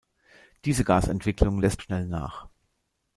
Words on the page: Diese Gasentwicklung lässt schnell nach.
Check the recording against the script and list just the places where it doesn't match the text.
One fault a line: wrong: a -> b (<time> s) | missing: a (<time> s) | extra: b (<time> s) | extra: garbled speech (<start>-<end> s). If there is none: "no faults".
no faults